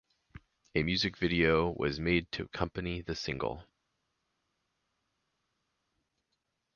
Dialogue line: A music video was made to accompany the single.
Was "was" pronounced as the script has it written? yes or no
yes